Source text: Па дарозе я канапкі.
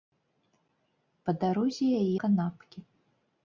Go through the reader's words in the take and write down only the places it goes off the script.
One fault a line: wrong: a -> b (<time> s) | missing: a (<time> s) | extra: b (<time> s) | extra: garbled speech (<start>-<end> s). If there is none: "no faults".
no faults